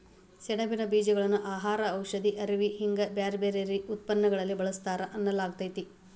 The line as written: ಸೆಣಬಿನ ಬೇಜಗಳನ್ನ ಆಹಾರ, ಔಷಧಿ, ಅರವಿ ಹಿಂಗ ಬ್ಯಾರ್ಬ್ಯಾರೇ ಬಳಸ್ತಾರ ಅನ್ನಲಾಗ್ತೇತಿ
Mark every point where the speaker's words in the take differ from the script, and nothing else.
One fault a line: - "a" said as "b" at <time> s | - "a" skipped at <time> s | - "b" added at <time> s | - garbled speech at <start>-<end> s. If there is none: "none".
- "ಉತ್ಪನ್ನಗಳಲ್ಲಿ" added at 3.9 s